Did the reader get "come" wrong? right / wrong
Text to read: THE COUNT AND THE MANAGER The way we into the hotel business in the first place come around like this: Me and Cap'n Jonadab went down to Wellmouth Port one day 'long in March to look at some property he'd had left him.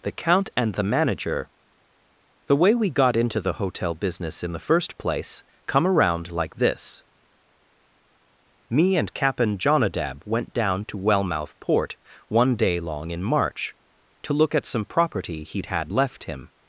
right